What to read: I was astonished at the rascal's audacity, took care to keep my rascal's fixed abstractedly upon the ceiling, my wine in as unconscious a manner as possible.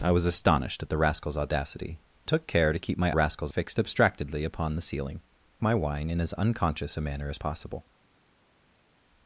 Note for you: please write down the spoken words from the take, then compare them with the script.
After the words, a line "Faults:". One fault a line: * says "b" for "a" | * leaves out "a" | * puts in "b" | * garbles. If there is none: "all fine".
I was astonished at the rascal's audacity, took care to keep my rascal's fixed abstractedly upon the ceiling, my wine in as unconscious a manner as possible.
Faults:
all fine